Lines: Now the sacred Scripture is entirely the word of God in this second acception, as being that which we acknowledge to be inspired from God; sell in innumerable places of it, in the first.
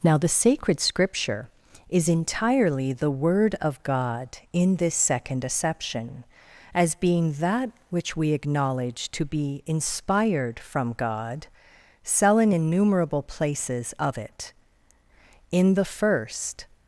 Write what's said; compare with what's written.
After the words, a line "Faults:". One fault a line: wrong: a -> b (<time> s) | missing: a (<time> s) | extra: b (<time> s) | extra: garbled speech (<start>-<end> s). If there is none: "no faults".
Now the sacred Scripture is entirely the word of God in this second acception, as being that which we acknowledge to be inspired from God; sell in innumerable places of it, in the first.
Faults:
no faults